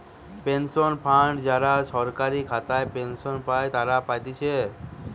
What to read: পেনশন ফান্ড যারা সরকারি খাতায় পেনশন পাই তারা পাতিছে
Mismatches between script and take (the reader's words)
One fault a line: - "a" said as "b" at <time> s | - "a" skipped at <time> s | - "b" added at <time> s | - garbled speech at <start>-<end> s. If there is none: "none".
none